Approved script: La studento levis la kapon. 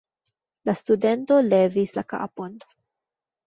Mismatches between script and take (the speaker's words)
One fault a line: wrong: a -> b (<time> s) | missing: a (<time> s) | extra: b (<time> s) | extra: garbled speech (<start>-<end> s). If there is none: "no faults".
no faults